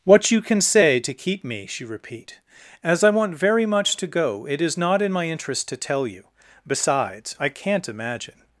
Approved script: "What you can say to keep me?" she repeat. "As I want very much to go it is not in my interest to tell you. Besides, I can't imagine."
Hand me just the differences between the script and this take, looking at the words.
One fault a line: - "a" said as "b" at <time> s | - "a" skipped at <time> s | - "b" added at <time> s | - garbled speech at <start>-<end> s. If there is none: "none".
none